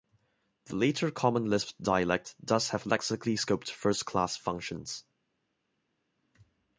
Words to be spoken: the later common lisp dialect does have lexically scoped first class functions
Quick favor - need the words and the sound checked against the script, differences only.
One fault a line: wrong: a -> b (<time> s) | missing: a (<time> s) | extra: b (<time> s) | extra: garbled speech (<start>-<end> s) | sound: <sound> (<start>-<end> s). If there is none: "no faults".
no faults